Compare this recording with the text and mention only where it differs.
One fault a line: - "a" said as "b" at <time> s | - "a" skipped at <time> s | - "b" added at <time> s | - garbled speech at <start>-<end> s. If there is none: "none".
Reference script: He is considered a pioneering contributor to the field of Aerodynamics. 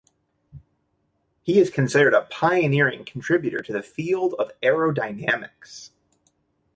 none